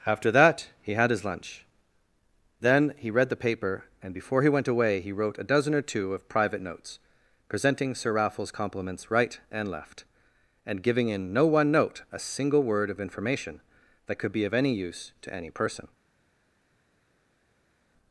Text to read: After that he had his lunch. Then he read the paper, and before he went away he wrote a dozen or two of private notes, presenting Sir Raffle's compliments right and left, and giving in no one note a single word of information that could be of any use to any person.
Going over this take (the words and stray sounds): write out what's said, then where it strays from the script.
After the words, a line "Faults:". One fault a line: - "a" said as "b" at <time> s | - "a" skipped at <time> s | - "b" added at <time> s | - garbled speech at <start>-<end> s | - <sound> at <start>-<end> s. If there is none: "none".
After that he had his lunch. Then he read the paper, and before he went away he wrote a dozen or two of private notes, presenting Sir Raffle's compliments right and left, and giving in no one note a single word of information that could be of any use to any person.
Faults:
none